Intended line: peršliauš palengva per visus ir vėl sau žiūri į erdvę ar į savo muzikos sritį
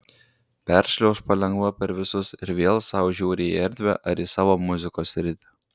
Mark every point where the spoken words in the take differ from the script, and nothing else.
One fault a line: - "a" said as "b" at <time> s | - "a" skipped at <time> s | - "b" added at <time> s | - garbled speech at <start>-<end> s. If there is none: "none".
none